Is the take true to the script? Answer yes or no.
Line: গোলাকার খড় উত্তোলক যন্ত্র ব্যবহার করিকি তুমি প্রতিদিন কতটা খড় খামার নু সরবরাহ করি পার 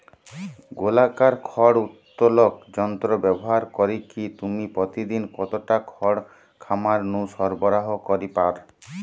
yes